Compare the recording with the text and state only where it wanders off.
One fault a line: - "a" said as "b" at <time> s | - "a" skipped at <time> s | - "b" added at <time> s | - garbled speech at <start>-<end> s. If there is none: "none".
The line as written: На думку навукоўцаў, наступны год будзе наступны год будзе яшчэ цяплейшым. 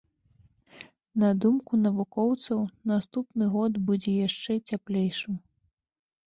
- "наступны год будзе" skipped at 4.1 s